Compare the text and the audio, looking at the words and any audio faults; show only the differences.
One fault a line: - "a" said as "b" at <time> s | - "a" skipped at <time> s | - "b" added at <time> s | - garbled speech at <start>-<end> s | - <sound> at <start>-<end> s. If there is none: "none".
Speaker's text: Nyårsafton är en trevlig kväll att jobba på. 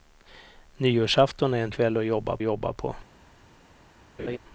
- "trevlig" skipped at 1.7 s
- "jobba" added at 2.4 s
- laugh at 4.2-4.4 s